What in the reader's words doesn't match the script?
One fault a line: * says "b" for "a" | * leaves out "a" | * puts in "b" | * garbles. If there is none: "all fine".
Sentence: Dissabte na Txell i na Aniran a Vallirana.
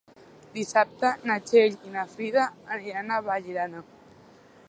* puts in "Frida"